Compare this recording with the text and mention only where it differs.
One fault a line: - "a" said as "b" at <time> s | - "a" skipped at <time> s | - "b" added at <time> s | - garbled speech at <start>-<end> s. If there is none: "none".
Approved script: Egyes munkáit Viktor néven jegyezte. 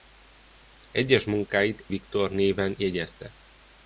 none